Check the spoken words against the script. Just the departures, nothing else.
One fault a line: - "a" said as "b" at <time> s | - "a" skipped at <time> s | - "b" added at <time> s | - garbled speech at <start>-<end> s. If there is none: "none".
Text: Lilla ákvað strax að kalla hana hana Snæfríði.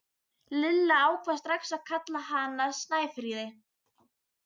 - "hana" skipped at 2.7 s